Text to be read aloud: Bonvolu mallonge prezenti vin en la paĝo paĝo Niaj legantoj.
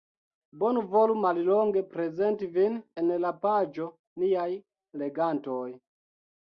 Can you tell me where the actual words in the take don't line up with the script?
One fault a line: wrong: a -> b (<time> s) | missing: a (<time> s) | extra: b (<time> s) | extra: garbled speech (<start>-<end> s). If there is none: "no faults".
missing: paĝo (3.9 s)